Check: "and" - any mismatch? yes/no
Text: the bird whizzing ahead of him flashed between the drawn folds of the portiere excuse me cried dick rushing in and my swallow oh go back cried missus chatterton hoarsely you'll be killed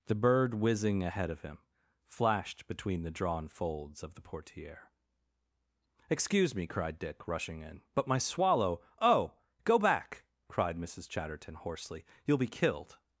yes